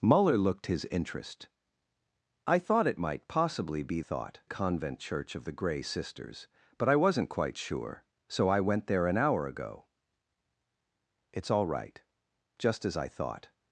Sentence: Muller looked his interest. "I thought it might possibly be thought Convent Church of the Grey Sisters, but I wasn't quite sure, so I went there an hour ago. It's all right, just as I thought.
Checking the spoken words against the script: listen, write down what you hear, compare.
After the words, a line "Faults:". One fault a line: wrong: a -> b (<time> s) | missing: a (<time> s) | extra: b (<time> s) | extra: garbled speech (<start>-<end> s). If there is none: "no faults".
Muller looked his interest. "I thought it might possibly be thought Convent Church of the Grey Sisters, but I wasn't quite sure, so I went there an hour ago. It's all right, just as I thought.
Faults:
no faults